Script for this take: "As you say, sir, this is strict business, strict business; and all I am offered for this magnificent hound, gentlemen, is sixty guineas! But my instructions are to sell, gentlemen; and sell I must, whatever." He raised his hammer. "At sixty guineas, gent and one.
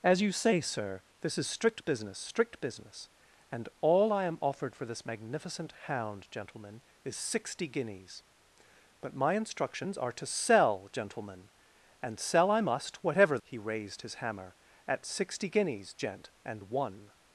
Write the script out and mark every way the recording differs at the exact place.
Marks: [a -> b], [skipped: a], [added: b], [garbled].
"As you say, sir, this is strict business, strict business; and all I am offered for this magnificent hound, gentlemen, is sixty guineas! But my instructions are to sell, gentlemen; and sell I must, whatever." He raised his hammer. "At sixty guineas, gent and one.